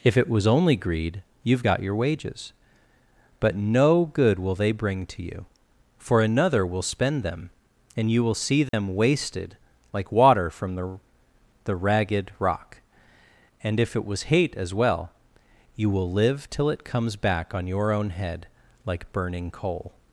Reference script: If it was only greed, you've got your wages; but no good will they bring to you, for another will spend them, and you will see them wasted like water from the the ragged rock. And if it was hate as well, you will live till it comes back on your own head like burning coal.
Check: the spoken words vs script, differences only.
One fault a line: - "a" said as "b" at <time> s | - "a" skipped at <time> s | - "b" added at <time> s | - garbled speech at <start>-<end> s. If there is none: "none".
none